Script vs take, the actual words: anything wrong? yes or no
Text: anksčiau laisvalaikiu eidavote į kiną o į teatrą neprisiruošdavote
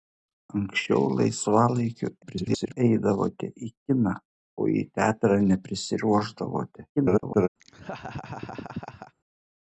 yes